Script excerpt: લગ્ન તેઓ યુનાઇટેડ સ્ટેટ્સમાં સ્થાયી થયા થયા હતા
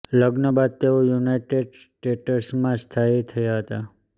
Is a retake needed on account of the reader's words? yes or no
yes